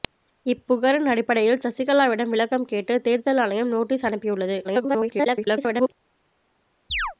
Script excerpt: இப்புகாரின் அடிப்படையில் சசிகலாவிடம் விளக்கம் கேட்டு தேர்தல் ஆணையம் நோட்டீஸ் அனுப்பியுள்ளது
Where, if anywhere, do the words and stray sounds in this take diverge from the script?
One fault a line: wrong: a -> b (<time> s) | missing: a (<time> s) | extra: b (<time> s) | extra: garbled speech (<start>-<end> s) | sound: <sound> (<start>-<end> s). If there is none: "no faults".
extra: garbled speech (4.6-5.9 s)
sound: chirp (6.9-7.1 s)